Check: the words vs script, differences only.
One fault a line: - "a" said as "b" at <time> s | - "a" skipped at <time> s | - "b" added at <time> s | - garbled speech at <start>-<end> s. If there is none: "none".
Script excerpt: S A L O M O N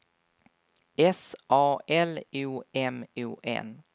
none